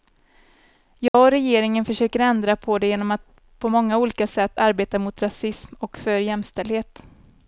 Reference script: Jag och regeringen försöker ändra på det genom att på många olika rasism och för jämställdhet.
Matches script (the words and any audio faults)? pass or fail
fail